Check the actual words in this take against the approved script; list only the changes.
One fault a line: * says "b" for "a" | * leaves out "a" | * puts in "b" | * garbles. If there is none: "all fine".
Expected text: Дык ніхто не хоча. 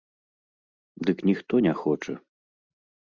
all fine